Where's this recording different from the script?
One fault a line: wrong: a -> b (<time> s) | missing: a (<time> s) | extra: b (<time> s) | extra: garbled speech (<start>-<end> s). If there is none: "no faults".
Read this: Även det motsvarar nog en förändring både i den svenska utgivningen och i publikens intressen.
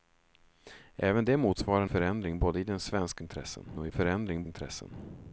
missing: nog en (1.9 s)
wrong: utgivningen -> intressen (3.2 s)
wrong: publikens -> förändring (3.9 s)